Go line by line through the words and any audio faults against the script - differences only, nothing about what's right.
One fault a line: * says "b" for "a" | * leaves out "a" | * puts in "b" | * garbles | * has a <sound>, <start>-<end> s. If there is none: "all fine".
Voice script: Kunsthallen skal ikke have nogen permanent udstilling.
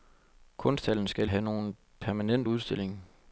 * leaves out "ikke"